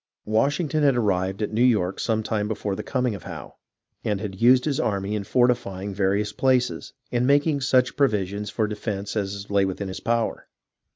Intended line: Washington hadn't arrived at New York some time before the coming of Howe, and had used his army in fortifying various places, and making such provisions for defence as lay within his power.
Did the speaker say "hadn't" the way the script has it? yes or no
no